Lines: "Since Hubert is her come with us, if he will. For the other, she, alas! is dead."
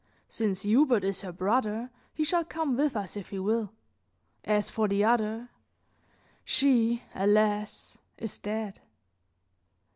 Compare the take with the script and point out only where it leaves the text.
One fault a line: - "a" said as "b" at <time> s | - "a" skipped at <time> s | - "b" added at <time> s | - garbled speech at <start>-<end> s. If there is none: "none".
- "brother he shall" added at 1.3 s
- "As" added at 4.4 s